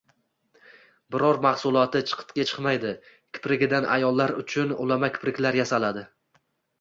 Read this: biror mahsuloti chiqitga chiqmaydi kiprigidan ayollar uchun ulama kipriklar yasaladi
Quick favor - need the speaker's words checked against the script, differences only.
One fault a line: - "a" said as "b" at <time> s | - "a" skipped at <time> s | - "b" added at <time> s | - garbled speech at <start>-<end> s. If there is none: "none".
none